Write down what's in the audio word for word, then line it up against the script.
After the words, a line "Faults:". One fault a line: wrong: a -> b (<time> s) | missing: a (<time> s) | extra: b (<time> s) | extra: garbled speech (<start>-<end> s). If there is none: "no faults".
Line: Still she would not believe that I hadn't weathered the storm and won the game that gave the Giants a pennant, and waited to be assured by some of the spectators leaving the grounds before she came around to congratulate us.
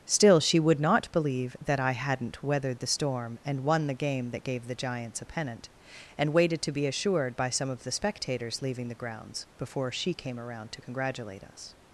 Still she would not believe that I hadn't weathered the storm and won the game that gave the Giants a pennant, and waited to be assured by some of the spectators leaving the grounds before she came around to congratulate us.
Faults:
no faults